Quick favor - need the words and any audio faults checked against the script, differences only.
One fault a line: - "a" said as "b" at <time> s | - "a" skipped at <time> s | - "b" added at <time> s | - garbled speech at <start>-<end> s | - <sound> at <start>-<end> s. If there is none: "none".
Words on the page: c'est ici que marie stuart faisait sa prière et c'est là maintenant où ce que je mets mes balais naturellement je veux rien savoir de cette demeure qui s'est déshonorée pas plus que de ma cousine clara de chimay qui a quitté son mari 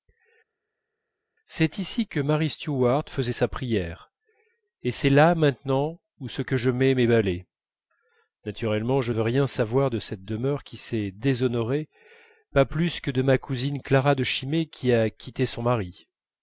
none